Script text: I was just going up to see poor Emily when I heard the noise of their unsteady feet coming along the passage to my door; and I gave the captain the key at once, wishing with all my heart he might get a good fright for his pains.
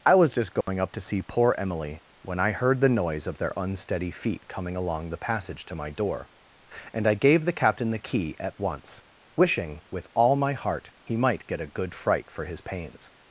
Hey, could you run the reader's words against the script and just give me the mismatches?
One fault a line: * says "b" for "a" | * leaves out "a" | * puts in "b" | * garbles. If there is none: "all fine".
all fine